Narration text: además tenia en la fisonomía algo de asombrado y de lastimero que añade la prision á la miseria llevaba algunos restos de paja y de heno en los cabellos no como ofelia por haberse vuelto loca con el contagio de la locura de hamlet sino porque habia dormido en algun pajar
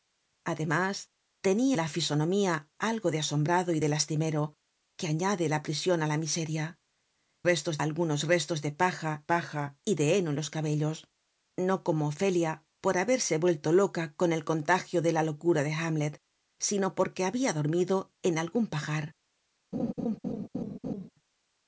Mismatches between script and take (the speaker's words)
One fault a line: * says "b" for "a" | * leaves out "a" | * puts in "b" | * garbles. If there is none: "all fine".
* leaves out "en"
* says "restos" for "llevaba"
* puts in "paja"